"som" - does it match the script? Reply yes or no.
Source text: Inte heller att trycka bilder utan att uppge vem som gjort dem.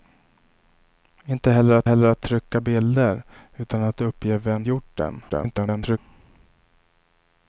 no